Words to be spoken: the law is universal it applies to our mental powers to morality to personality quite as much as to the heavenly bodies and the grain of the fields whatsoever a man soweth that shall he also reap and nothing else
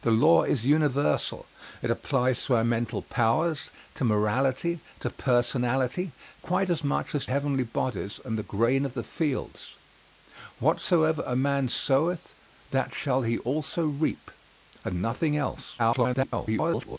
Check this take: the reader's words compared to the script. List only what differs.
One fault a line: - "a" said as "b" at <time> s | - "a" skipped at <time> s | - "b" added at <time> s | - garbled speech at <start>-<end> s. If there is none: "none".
- "to the" skipped at 7.3 s
- garbled speech at 15.8-17.0 s